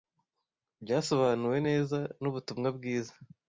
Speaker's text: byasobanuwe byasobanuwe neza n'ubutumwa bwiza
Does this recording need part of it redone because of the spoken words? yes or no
yes